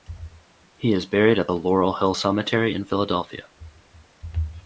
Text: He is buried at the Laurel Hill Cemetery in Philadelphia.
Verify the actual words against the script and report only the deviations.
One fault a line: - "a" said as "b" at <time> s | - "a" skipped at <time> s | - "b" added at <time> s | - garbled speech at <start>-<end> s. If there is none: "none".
none